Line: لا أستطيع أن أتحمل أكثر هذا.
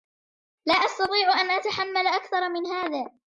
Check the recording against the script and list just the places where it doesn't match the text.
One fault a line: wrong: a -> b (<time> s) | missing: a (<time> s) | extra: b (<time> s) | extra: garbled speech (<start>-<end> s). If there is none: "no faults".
extra: من (2.5 s)